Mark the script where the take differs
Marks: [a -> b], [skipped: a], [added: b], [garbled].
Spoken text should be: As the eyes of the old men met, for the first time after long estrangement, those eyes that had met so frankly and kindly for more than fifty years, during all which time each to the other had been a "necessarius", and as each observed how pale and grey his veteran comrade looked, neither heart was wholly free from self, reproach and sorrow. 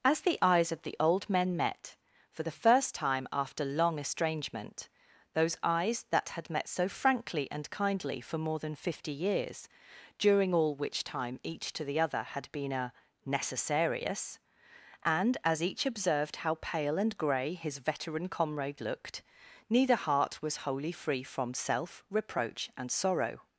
As the eyes of the old men met, for the first time after long estrangement, those eyes that had met so frankly and kindly for more than fifty years, during all which time each to the other had been a "necessarius", and as each observed how pale and grey his veteran comrade looked, neither heart was wholly free from self, reproach and sorrow.